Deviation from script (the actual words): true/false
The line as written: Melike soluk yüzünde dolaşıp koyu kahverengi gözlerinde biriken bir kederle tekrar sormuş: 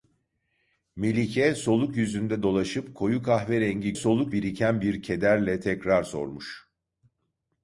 true